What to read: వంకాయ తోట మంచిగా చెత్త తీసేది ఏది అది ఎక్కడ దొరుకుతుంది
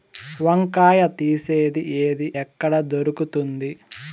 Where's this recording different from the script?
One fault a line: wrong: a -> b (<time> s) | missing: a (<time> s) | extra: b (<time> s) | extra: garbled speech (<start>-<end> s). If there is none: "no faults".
missing: తోట మంచిగా చెత్త (1.0 s)
missing: అది (2.3 s)